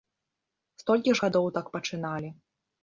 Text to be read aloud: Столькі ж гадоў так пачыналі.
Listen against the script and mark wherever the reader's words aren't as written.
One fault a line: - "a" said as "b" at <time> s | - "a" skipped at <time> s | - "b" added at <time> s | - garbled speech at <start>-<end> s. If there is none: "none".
none